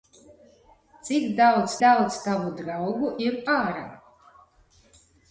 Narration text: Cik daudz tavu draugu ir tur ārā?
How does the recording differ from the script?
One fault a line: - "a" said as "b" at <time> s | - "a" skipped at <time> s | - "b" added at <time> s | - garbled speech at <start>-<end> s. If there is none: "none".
- "daudz" added at 1.8 s
- "tur" skipped at 3.4 s